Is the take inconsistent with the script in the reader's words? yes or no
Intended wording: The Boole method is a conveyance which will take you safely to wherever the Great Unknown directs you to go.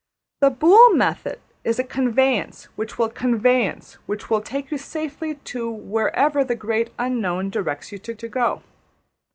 yes